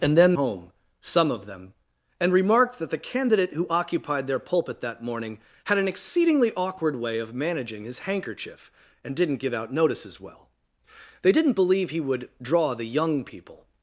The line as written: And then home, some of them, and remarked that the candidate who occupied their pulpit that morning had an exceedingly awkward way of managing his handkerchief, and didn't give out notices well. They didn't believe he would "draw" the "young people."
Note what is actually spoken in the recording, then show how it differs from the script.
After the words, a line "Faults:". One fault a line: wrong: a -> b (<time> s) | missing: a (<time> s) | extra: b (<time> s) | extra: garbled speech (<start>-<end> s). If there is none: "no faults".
And then home, some of them, and remarked that the candidate who occupied their pulpit that morning had an exceedingly awkward way of managing his handkerchief, and didn't give out notices well. They didn't believe he would "draw" the "young people."
Faults:
no faults